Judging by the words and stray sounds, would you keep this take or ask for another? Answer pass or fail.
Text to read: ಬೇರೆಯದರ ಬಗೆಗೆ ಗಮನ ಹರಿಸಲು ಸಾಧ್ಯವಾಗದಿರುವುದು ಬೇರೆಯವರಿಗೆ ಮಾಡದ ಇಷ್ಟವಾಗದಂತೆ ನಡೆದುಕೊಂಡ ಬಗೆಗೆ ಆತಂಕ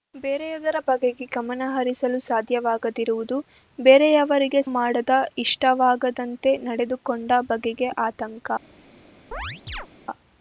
fail